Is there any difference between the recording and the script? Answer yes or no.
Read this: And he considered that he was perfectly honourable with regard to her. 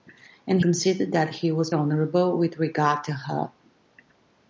yes